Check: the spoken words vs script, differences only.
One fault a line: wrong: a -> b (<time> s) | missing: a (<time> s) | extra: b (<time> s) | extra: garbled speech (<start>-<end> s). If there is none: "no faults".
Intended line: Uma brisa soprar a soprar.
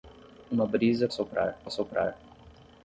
no faults